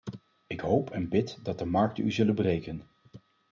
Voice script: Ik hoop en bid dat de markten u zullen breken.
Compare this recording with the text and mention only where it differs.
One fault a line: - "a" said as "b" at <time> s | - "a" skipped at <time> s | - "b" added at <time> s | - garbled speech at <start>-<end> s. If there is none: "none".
none